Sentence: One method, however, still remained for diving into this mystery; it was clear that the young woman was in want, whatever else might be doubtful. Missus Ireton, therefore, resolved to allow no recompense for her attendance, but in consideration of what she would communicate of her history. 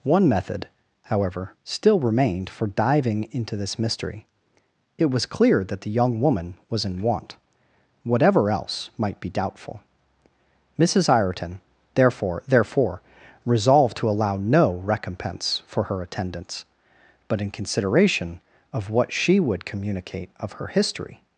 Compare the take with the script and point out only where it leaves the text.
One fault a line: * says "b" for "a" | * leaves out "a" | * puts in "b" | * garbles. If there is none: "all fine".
* puts in "therefore"